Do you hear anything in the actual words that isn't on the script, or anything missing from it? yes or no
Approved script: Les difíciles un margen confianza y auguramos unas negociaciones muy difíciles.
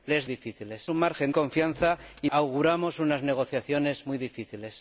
no